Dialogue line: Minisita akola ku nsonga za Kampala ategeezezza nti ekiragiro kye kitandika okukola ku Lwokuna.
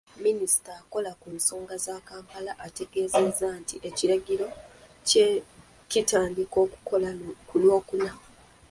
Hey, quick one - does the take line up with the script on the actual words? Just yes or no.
yes